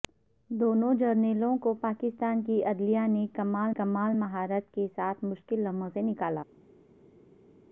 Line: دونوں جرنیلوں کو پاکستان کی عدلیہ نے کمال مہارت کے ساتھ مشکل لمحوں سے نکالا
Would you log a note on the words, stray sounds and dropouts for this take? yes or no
yes